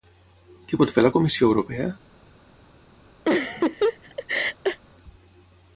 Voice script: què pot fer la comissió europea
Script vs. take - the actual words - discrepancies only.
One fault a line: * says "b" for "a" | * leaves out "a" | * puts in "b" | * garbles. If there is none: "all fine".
all fine